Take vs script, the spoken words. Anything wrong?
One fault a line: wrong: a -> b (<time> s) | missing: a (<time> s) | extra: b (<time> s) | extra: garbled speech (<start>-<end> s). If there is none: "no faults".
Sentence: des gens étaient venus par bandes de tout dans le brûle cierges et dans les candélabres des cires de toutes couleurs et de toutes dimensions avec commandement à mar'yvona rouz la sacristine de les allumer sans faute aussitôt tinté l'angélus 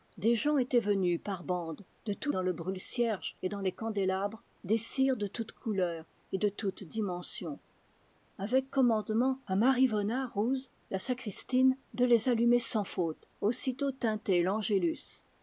no faults